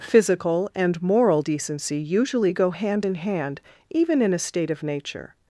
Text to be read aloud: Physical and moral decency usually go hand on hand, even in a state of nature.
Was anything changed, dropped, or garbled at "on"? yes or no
yes